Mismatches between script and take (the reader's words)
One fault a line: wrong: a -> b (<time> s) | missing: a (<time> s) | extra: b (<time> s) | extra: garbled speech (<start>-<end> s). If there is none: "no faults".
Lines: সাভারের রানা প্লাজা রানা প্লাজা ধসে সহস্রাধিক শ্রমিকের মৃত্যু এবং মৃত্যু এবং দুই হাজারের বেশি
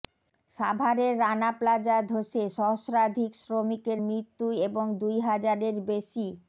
missing: রানা প্লাজা (2.0 s)
missing: মৃত্যু এবং (4.8 s)